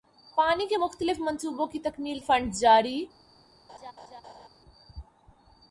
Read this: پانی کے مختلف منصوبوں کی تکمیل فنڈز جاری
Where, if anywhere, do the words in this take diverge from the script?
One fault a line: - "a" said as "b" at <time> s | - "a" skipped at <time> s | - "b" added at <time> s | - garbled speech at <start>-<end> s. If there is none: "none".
none